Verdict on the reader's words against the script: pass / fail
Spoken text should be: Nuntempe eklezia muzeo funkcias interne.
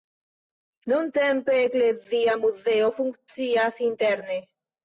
pass